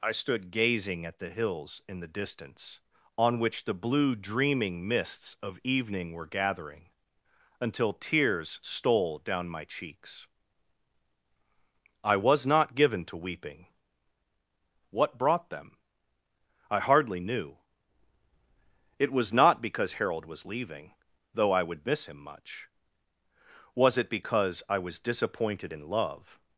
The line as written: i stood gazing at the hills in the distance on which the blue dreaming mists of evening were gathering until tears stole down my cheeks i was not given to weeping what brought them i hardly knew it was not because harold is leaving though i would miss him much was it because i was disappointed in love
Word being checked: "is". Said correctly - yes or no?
no